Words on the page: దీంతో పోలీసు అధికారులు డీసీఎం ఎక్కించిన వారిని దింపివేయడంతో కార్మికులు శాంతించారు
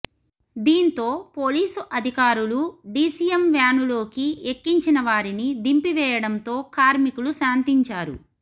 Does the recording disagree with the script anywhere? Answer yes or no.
yes